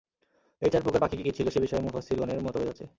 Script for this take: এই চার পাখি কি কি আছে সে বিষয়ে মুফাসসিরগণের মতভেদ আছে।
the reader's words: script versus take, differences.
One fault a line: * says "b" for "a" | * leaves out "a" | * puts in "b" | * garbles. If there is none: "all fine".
* puts in "প্রকার"
* says "ছিল" for "আছে"